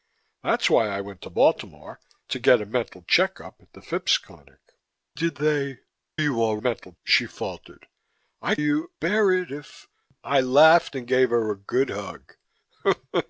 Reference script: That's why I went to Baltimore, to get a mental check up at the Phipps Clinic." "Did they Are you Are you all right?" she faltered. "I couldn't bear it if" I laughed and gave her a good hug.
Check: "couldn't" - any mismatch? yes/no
yes